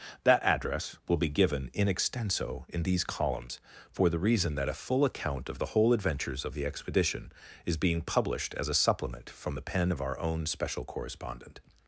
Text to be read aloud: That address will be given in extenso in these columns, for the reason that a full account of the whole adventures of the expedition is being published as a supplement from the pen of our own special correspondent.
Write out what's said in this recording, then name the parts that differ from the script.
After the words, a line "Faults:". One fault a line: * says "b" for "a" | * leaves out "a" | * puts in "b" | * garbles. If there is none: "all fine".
That address will be given in extenso in these columns, for the reason that a full account of the whole adventures of the expedition is being published as a supplement from the pen of our own special correspondent.
Faults:
all fine